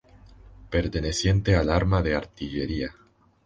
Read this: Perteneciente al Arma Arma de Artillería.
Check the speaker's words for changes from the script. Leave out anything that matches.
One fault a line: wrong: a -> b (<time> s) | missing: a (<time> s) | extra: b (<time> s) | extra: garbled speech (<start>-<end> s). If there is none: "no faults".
missing: Arma (2.0 s)